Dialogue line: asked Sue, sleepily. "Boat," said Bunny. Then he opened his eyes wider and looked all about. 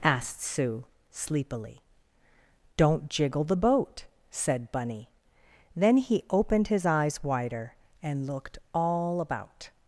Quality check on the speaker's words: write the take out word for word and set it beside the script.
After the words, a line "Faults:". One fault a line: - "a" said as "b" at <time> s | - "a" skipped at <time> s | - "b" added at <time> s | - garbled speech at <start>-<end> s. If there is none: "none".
asked Sue, sleepily. "Don't jiggle the boat," said Bunny. Then he opened his eyes wider and looked all about.
Faults:
- "Don't jiggle the" added at 2.8 s